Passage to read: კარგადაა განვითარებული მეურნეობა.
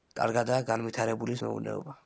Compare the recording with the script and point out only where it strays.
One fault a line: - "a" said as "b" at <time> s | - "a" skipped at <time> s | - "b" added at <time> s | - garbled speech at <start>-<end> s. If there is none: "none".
none